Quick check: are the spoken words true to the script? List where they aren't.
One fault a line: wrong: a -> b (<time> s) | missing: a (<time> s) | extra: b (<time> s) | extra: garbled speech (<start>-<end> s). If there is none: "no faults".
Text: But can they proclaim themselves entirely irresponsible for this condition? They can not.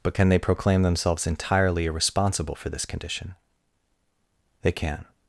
missing: not (5.1 s)